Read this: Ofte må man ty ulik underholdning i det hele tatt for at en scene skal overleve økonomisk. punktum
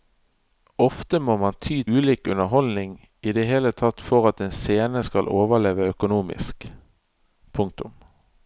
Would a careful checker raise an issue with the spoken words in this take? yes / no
no